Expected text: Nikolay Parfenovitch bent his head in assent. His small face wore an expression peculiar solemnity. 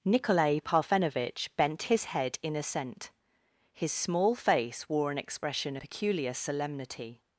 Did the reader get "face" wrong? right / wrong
right